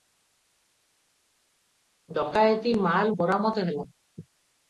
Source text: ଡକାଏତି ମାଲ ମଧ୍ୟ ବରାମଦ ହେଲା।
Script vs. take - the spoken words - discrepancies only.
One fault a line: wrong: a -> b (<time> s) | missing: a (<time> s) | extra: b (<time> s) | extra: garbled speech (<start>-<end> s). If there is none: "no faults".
missing: ମଧ୍ୟ (3.1 s)